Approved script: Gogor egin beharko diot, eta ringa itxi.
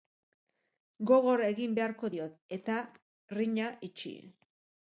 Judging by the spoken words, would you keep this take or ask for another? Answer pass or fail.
pass